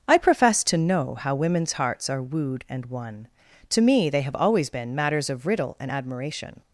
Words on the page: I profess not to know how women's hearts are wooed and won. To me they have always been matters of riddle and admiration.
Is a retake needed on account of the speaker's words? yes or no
yes